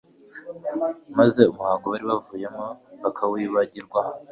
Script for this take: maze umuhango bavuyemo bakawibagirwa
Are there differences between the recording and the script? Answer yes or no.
yes